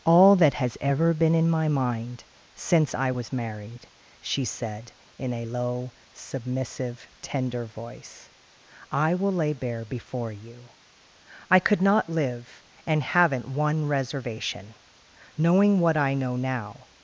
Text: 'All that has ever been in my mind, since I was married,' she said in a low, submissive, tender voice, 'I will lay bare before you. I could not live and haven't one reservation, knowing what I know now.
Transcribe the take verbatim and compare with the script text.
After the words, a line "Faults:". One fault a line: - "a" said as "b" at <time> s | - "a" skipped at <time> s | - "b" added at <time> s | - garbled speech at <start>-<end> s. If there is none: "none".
'All that has ever been in my mind, since I was married,' she said in a low, submissive, tender voice, 'I will lay bare before you. I could not live and haven't one reservation, knowing what I know now.
Faults:
none